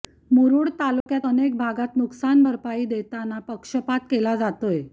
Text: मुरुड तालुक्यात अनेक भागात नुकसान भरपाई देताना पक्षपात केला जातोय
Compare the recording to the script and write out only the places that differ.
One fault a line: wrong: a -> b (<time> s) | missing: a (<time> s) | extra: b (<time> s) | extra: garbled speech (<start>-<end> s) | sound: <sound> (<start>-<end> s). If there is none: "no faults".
sound: dropout (1.0-1.1 s)